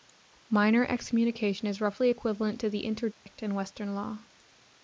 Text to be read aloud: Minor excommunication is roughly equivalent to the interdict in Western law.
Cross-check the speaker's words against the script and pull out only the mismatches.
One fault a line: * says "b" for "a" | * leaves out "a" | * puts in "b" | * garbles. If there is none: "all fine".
all fine